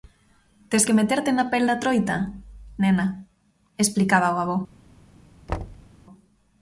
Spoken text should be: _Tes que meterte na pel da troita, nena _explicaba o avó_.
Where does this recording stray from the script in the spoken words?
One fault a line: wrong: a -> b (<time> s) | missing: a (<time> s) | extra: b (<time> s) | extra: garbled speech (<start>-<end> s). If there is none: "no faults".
no faults